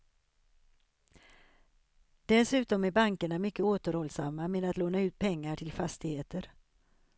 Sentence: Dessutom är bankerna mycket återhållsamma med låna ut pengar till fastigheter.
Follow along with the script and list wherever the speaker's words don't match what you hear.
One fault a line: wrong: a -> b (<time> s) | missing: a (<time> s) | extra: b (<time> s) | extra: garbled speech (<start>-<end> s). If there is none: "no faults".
extra: att (4.6 s)